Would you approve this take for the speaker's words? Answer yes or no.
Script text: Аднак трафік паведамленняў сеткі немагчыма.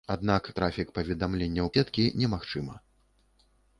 yes